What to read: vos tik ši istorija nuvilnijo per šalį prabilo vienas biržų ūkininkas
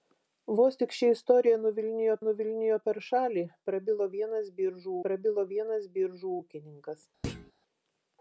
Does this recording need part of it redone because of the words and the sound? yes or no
yes